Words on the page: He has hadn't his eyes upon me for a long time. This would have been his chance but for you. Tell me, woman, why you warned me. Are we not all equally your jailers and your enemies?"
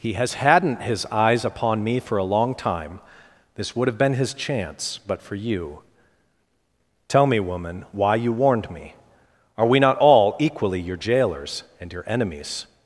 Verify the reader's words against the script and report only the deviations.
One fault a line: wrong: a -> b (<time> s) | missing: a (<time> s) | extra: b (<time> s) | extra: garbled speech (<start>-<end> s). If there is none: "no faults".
no faults